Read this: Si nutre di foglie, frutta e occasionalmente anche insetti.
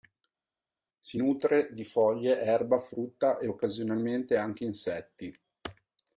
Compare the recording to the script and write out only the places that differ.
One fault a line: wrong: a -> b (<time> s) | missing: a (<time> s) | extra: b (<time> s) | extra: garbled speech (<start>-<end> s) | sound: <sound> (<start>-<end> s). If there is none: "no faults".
extra: erba (2.4 s)